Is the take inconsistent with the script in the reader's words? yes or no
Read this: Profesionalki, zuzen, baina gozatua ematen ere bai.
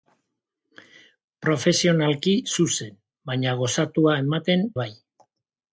yes